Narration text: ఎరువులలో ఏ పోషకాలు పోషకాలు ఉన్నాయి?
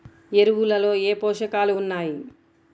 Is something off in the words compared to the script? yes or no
yes